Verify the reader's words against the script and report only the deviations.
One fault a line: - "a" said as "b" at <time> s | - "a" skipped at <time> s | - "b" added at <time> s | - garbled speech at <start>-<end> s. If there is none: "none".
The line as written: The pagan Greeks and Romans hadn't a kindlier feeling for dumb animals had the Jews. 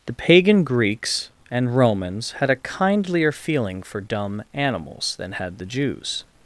- "hadn't" said as "had" at 2.4 s
- "than" added at 5.2 s